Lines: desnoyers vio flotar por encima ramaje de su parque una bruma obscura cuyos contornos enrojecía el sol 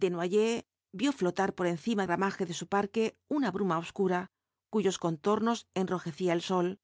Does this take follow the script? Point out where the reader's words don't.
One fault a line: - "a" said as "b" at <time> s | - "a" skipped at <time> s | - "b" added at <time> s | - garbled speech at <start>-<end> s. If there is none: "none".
none